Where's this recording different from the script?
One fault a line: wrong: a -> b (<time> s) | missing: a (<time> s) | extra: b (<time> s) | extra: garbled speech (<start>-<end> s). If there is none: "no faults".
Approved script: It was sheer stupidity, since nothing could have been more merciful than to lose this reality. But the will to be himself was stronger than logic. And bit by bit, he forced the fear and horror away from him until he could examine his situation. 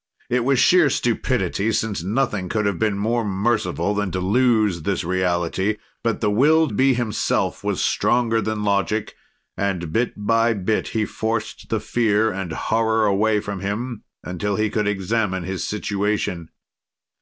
missing: to (6.7 s)